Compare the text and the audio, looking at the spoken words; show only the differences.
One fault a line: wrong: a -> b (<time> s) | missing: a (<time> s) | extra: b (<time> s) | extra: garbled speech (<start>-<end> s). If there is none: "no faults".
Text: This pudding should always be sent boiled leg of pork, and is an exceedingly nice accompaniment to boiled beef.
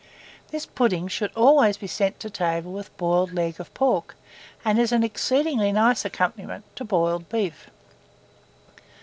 extra: to table with (2.2 s)